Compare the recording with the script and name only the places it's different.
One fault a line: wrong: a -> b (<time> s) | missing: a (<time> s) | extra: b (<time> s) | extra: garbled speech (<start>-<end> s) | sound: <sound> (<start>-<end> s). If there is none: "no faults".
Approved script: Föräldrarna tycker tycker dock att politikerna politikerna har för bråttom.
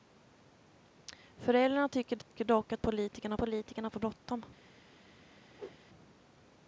sound: dropout (2.2-2.3 s)
sound: whoosh (5.5-5.8 s)